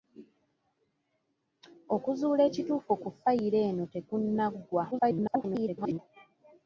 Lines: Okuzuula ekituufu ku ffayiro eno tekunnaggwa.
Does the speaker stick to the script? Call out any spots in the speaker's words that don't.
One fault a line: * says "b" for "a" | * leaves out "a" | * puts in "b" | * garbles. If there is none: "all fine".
* garbles